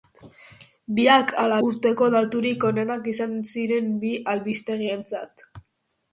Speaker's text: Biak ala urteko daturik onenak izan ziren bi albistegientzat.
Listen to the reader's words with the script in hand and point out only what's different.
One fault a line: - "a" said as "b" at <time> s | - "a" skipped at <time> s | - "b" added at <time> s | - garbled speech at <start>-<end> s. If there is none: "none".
none